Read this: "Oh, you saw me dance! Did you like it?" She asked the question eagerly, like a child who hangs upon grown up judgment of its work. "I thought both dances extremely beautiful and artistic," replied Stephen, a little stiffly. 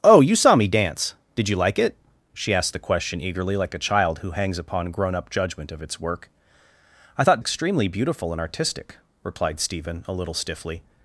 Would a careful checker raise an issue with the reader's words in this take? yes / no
yes